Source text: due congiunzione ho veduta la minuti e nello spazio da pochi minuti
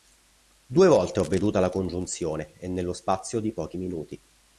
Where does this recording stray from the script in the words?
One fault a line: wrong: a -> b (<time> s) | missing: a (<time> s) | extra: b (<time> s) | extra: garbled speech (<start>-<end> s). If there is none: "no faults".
wrong: congiunzione -> volte (0.9 s)
wrong: minuti -> congiunzione (1.7 s)
wrong: da -> di (3.4 s)